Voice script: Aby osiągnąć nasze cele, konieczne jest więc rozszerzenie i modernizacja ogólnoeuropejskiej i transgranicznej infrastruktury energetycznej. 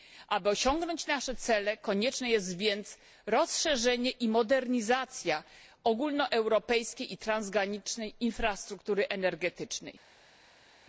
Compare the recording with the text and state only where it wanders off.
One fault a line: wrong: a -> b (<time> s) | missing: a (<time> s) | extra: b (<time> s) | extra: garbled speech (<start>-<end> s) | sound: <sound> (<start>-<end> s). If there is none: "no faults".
no faults